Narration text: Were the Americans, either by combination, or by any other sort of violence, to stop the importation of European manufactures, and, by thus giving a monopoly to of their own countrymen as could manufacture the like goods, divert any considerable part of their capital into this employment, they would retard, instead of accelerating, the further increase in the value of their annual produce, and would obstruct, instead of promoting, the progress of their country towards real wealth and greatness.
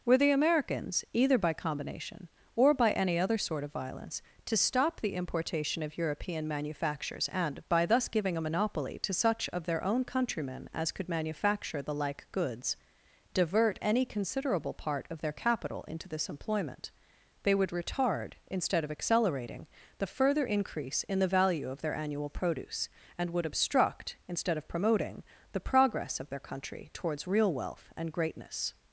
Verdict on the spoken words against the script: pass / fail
fail